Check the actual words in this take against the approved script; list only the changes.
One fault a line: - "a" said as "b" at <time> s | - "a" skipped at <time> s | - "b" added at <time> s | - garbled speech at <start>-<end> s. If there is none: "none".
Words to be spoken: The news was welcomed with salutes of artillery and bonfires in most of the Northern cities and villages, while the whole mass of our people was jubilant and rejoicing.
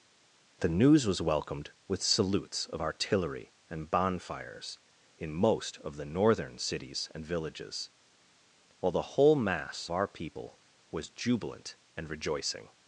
- "of" skipped at 9.9 s